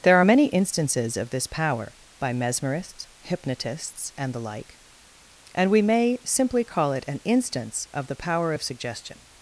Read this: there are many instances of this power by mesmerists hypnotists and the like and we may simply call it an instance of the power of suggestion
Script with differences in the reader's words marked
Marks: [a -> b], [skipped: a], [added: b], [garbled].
there are many instances of this power by mesmerists hypnotists and the like and we may simply call it an instance of the power of suggestion